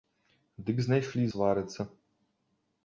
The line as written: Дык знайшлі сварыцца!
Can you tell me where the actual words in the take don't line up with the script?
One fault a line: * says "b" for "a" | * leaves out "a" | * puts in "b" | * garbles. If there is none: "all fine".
all fine